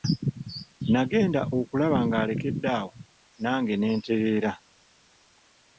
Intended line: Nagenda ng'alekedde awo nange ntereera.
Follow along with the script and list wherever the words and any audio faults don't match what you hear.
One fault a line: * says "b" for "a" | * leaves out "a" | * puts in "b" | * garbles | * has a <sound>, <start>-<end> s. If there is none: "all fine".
* puts in "okulaba"
* puts in "ne"